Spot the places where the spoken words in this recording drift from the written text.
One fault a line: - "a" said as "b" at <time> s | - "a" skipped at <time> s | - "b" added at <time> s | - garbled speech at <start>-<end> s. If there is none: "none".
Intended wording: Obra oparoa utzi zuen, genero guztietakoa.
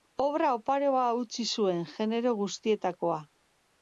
none